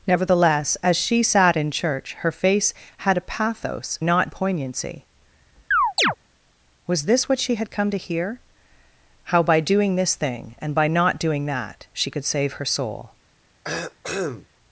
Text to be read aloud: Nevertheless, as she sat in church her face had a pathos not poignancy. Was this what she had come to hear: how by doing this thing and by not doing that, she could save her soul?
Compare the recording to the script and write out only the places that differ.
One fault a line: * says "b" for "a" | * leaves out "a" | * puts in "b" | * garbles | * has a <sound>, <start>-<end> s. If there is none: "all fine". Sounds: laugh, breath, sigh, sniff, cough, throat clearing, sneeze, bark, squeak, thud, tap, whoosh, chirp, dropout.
* has a chirp, 5.7-6.2 s
* has a cough, 13.6-14.5 s